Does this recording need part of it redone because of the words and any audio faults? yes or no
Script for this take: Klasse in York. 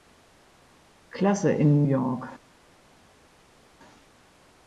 no